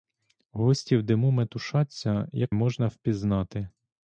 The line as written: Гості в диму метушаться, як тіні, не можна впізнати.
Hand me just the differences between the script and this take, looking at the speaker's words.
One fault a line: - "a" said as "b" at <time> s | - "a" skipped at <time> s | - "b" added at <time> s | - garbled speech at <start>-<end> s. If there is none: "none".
- "тіні не" skipped at 2.5 s